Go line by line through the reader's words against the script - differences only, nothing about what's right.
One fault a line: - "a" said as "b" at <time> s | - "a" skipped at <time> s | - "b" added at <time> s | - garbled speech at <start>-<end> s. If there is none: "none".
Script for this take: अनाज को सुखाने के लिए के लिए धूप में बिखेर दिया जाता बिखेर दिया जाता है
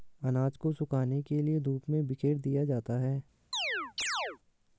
- "के लिए" skipped at 1.6 s
- "बिखेर दिया जाता" skipped at 3.0 s